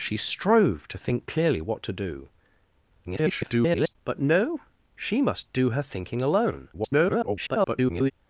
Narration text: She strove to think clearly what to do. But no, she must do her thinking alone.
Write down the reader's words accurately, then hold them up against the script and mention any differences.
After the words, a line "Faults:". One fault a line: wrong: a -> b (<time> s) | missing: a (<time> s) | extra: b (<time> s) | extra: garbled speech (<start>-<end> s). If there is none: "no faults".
She strove to think clearly what to do. [garbled] But no, she must do her thinking alone. [garbled]
Faults:
extra: garbled speech (3.0-4.0 s)
extra: garbled speech (6.7-8.1 s)